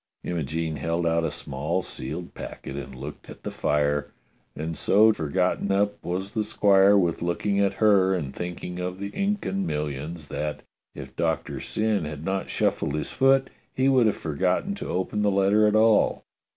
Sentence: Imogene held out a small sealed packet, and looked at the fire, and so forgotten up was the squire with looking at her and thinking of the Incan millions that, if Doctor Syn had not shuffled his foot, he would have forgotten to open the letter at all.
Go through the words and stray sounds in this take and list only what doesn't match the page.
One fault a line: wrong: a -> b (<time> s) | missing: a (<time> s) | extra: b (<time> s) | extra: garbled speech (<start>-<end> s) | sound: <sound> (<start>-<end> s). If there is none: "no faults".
no faults